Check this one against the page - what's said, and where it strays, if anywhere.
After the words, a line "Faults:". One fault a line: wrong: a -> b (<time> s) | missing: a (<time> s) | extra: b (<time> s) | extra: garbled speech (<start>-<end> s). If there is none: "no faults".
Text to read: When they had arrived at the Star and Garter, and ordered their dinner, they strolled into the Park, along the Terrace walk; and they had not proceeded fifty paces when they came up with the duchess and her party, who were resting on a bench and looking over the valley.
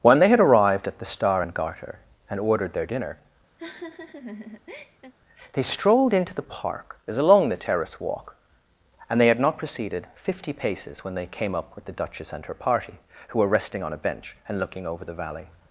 When they had arrived at the Star and Garter, and ordered their dinner, they strolled into the Park, as along the Terrace walk; and they had not proceeded fifty paces when they came up with the duchess and her party, who were resting on a bench and looking over the valley.
Faults:
extra: as (7.1 s)